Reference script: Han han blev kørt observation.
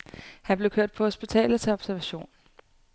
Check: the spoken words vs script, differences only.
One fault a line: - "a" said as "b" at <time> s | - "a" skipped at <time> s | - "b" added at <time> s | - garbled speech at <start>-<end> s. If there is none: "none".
- "han" skipped at 0.6 s
- "på hospitalet til" added at 0.9 s